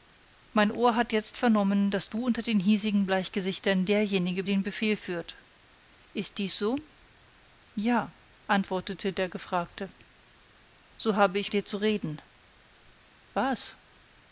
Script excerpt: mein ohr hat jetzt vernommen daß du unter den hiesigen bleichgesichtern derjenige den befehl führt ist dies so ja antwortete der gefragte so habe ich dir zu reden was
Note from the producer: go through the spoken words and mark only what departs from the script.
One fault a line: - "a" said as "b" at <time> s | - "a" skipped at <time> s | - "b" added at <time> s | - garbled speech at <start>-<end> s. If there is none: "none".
none